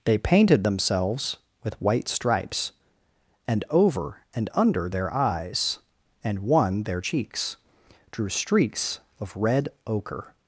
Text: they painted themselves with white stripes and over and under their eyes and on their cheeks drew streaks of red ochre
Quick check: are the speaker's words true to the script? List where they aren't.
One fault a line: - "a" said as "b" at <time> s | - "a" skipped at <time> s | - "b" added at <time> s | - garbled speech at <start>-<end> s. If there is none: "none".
- "on" said as "one" at 6.4 s